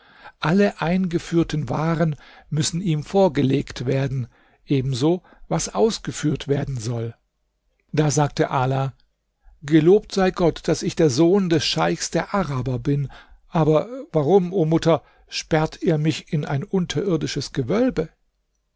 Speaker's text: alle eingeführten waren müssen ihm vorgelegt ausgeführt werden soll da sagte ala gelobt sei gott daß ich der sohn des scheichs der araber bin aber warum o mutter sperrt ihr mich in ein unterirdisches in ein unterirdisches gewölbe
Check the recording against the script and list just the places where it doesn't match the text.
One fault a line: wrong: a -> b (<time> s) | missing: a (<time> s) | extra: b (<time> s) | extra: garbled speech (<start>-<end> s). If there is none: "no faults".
extra: werden ebenso was (3.8 s)
missing: in ein unterirdisches (17.5 s)